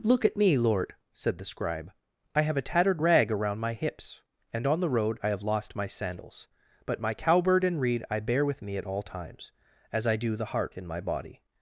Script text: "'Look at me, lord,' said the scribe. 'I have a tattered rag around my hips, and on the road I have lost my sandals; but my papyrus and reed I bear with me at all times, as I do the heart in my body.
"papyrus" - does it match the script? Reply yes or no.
no